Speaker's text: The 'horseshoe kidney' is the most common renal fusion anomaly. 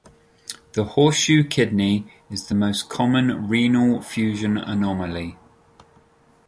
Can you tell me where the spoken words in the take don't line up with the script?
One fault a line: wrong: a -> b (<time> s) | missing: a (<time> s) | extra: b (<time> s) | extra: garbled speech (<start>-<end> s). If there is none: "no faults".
no faults